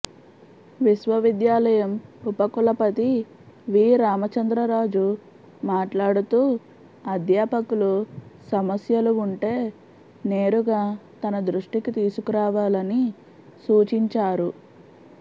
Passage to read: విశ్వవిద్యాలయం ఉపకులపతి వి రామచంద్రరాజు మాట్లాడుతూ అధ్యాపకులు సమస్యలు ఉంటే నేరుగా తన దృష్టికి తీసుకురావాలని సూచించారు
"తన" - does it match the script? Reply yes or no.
yes